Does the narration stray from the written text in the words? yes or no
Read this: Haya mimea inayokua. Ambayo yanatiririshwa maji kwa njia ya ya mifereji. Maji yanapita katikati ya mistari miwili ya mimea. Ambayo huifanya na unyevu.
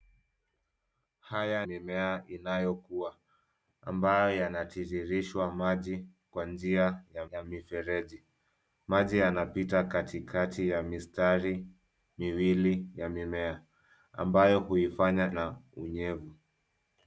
no